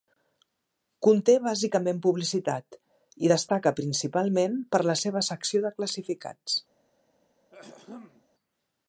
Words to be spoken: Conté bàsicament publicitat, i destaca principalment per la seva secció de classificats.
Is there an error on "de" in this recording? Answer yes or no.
no